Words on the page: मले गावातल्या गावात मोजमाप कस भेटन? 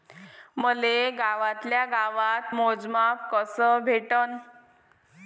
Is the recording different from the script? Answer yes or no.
no